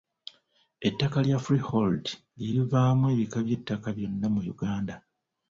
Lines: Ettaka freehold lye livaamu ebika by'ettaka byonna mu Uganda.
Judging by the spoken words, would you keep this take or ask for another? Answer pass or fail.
fail